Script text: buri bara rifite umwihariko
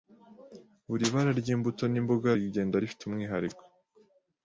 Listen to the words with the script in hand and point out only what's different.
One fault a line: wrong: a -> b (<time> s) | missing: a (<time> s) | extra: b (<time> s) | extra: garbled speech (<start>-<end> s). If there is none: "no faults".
extra: ry'imbuto n'imboga rigenda (1.4 s)